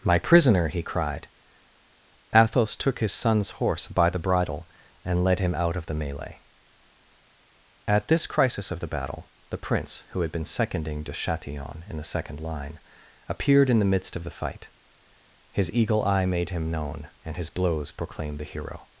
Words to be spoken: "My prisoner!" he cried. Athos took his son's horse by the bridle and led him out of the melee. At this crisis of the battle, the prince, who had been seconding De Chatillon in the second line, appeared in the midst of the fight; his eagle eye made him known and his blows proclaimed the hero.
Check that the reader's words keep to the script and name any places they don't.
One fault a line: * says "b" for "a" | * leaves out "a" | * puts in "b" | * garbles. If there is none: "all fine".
all fine